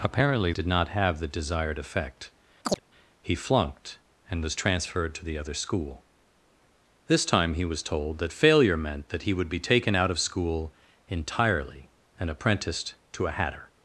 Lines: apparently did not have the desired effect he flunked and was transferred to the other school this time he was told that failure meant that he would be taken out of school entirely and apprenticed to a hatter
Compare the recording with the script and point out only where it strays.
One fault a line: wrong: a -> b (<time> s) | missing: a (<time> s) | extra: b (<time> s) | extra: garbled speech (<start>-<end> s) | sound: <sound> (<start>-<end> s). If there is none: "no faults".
sound: chirp (2.6-2.8 s)